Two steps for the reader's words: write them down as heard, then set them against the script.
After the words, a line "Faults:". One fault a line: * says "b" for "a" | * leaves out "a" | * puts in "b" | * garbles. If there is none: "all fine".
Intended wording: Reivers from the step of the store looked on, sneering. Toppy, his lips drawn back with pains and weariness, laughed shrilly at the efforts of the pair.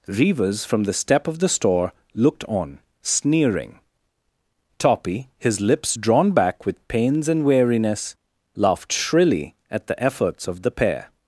Reivers from the step of the store looked on, sneering. Toppy, his lips drawn back with pains and weariness, laughed shrilly at the efforts of the pair.
Faults:
all fine